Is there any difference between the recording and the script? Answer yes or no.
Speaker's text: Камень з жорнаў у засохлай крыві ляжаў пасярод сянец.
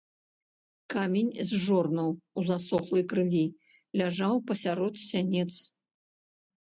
no